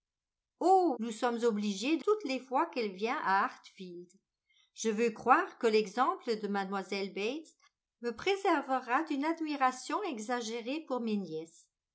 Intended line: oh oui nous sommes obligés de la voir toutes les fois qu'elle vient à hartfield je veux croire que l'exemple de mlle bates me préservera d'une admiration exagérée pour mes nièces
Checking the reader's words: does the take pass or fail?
fail